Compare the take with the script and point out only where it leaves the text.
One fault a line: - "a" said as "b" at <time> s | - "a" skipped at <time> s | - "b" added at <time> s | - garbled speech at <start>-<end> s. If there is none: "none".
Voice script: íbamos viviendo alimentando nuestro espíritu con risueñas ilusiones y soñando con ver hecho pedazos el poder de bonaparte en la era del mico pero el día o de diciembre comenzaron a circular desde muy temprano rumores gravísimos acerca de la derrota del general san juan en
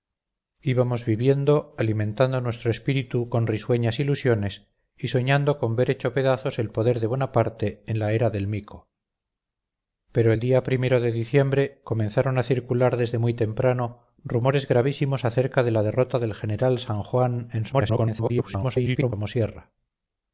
- garbled speech at 17.7-19.1 s